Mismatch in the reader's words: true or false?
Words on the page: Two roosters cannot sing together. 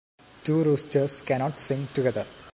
false